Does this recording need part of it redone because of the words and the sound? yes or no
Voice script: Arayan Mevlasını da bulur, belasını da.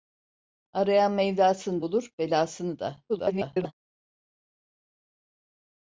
yes